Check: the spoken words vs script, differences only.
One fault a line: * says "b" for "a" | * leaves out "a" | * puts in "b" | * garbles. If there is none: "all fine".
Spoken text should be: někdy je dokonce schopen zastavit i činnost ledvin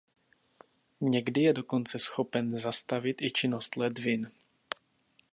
all fine